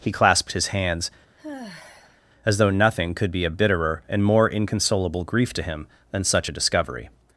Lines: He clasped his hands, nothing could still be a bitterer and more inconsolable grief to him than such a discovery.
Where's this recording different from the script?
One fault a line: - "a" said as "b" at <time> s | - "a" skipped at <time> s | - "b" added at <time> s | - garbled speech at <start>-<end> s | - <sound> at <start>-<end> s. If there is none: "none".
- sigh at 1.4-2.2 s
- "as though" added at 2.5 s
- "still" skipped at 3.3 s